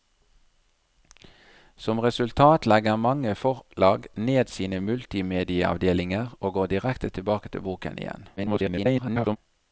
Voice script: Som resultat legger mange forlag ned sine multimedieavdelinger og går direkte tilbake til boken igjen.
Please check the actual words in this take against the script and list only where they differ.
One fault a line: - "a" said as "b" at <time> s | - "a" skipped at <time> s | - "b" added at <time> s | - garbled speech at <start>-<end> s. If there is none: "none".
- garbled speech at 8.4-9.4 s